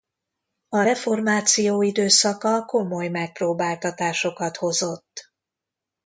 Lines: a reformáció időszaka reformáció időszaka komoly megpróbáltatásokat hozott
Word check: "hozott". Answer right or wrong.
right